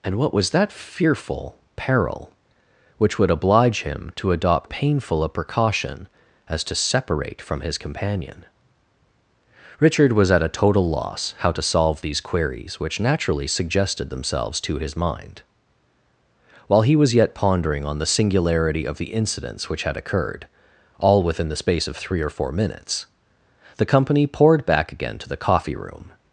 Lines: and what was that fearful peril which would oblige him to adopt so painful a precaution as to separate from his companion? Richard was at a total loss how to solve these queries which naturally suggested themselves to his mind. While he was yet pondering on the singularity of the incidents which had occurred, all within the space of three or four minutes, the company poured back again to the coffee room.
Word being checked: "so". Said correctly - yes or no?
no